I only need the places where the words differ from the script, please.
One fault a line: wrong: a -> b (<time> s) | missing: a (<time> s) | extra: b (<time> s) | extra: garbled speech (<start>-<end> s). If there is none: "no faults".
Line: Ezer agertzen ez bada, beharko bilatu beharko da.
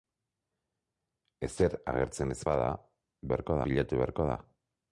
no faults